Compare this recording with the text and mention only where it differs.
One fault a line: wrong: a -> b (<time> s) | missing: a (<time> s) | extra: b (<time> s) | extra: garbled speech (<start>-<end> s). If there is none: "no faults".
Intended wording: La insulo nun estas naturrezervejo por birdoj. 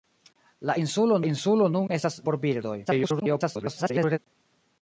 extra: insulo (1.3 s)
missing: naturrezervejo (2.2 s)
extra: garbled speech (2.9-4.2 s)